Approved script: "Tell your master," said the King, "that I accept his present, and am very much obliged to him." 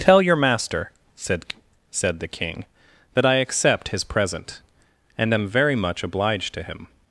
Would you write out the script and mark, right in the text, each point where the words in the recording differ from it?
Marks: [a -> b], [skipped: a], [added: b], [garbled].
"Tell your master," said [added: said] the King, "that I accept his present, and am very much obliged to him."